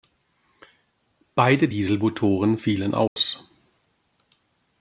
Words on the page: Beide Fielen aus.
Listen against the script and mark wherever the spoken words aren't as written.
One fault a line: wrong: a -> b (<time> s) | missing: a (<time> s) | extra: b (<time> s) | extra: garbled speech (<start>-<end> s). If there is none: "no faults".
extra: Dieselmotoren (1.7 s)